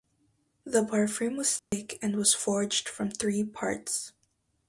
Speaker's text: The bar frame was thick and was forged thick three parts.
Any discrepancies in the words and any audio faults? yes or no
yes